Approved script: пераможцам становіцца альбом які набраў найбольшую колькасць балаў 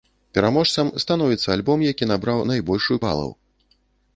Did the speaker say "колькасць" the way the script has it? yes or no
no